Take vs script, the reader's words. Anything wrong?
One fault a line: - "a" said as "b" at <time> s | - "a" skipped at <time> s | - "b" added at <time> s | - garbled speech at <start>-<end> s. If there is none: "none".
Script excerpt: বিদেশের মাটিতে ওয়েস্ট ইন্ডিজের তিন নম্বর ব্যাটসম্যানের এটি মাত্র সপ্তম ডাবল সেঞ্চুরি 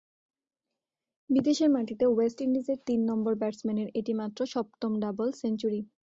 none